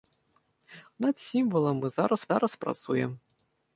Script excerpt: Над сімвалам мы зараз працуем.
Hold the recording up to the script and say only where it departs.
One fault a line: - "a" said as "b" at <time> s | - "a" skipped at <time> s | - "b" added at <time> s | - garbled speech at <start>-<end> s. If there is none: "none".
- "зараз" added at 2.3 s